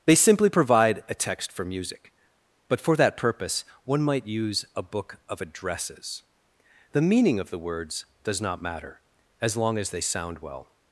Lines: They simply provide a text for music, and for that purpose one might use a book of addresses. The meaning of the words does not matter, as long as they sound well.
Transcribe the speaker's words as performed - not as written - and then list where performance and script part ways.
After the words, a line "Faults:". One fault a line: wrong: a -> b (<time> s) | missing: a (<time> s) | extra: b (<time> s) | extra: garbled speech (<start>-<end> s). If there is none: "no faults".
They simply provide a text for music, but for that purpose one might use a book of addresses. The meaning of the words does not matter, as long as they sound well.
Faults:
wrong: and -> but (2.7 s)